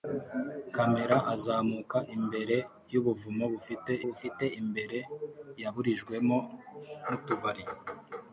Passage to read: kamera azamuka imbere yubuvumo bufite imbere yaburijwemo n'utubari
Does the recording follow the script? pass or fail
fail